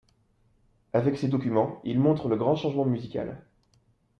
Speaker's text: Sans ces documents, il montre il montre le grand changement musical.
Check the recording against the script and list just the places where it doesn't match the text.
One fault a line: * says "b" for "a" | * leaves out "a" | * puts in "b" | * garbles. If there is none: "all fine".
* says "Avec" for "Sans"
* leaves out "il montre"